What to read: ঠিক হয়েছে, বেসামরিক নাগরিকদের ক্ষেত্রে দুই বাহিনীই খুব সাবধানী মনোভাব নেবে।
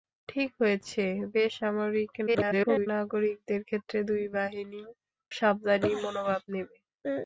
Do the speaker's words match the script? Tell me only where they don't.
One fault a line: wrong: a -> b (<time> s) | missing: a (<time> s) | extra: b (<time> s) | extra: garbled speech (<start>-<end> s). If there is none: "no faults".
extra: garbled speech (2.3-2.9 s)
missing: খুব (4.9 s)